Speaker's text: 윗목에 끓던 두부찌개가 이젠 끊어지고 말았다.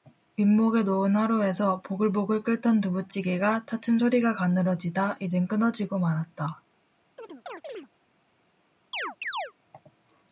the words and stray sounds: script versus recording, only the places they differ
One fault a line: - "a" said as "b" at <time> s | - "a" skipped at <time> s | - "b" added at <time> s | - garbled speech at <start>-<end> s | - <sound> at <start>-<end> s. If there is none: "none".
- "놓은 화로에서 보글보글" added at 0.8 s
- "차츰 소리가 가늘어지다" added at 3.7 s
- chirp at 7.2-7.9 s
- chirp at 8.9-9.5 s